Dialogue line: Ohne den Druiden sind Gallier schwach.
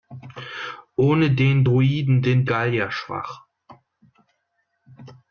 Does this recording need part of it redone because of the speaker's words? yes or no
no